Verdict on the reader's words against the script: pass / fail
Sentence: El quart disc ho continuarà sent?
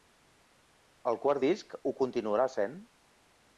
pass